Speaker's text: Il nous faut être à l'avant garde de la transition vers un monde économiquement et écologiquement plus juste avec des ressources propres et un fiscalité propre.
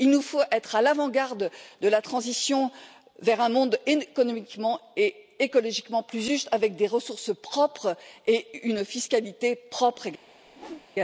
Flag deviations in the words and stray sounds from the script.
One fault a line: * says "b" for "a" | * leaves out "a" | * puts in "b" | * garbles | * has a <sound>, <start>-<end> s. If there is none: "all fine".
* says "une" for "un"
* has a whoosh, 10.5-10.9 s